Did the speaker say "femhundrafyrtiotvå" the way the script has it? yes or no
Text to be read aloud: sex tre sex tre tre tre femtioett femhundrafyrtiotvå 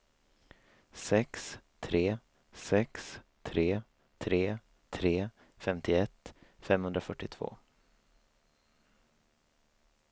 yes